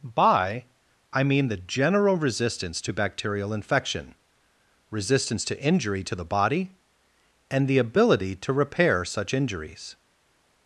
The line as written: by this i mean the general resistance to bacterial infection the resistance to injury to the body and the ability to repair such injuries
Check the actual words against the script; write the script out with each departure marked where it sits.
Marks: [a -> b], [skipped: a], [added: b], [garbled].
by [skipped: this] i mean the general resistance to bacterial infection [skipped: the] resistance to injury to the body and the ability to repair such injuries